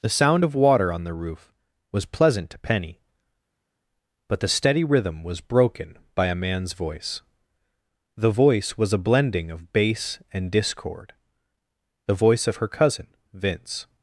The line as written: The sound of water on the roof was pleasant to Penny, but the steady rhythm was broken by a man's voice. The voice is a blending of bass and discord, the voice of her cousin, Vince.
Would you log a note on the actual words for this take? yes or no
yes